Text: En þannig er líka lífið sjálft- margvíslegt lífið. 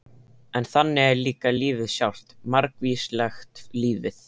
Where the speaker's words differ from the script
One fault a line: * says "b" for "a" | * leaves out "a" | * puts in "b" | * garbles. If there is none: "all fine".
all fine